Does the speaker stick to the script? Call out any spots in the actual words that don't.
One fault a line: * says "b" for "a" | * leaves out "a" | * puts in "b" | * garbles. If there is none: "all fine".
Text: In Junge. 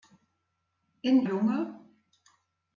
all fine